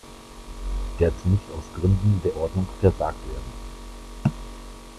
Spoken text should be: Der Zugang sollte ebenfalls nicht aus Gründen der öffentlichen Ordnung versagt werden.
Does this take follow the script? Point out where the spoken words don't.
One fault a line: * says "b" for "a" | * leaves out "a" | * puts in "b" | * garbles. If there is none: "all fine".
* leaves out "Zugang sollte ebenfalls"
* leaves out "öffentlichen"